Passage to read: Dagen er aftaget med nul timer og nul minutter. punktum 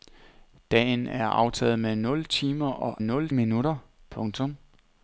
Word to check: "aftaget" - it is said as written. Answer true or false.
true